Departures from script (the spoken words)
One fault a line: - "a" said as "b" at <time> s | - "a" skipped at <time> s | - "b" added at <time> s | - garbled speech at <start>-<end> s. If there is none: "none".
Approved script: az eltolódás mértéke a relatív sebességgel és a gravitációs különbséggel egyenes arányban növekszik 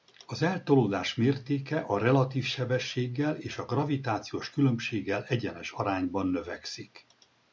none